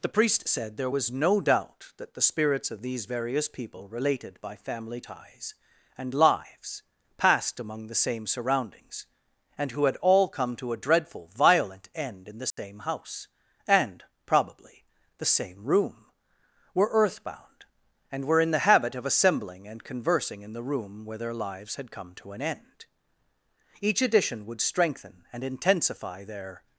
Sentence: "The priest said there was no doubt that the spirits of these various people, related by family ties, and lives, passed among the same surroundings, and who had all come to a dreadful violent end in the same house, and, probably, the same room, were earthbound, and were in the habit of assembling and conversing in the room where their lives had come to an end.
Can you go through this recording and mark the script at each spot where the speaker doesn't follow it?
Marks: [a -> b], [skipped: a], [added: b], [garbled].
"The priest said there was no doubt that the spirits of these various people, related by family ties, and lives, passed among the same surroundings, and who had all come to a dreadful violent end in the same house, and, probably, the same room, were earthbound, and were in the habit of assembling and conversing in the room where their lives had come to an end. [added: Each addition would strengthen and intensify their]